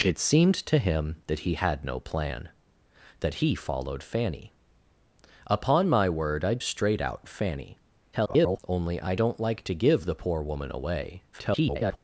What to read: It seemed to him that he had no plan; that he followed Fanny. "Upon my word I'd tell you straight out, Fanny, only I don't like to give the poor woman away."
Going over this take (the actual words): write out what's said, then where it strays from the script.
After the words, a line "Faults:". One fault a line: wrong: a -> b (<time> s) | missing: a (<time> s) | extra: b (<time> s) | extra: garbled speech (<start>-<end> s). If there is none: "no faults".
It seemed to him that he had no plan; that he followed Fanny. "Upon my word I'd straight out, Fanny, [garbled] only I don't like to give the poor woman away." [garbled]
Faults:
missing: tell you (6.6 s)
extra: garbled speech (8.1-8.6 s)
extra: garbled speech (11.3-12.0 s)